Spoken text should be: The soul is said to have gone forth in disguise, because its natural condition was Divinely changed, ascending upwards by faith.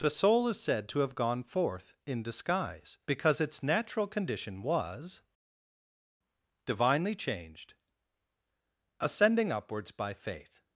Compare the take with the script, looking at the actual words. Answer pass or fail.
pass